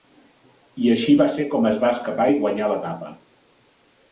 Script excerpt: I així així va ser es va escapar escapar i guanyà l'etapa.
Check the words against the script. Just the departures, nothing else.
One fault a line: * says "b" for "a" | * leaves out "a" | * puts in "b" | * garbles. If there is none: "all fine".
* leaves out "així"
* puts in "com"
* leaves out "escapar"